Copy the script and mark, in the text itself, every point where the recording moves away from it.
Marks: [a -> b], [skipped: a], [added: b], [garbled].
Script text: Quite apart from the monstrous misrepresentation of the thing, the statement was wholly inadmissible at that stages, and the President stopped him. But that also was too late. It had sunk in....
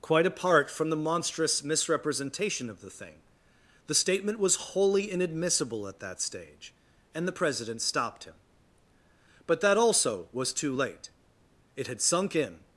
Quite apart from the monstrous misrepresentation of the thing, the statement was wholly inadmissible at that [stages, -> stage] and the President stopped him. But that also was too late. It had sunk in....